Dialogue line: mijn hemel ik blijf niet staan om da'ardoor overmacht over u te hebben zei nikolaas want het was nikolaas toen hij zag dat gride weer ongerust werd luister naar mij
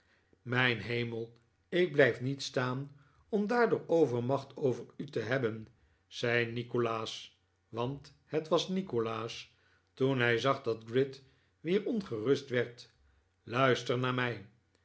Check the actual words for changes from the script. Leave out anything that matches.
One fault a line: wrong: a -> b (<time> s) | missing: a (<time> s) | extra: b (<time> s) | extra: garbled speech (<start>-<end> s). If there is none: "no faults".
no faults